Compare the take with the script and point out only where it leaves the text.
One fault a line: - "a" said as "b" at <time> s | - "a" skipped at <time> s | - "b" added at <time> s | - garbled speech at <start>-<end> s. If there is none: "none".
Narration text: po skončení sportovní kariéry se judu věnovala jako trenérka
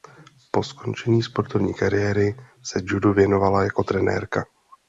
none